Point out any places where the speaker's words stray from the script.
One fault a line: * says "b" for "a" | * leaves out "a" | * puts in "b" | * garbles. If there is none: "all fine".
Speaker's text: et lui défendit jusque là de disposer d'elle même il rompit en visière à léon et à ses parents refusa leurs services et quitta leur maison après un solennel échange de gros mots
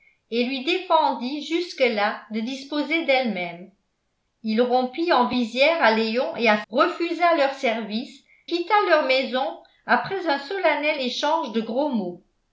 * leaves out "ses parents"
* leaves out "et"